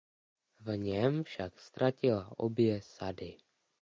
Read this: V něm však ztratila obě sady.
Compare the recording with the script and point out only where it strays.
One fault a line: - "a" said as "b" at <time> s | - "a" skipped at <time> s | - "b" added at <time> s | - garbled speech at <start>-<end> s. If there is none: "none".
none